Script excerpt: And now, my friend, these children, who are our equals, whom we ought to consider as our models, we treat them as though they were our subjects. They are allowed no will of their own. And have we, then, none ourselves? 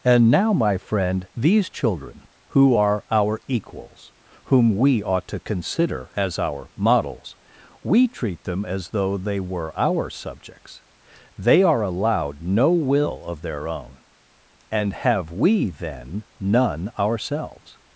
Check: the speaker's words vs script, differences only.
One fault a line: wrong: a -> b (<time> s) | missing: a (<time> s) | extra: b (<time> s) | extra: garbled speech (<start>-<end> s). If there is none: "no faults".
no faults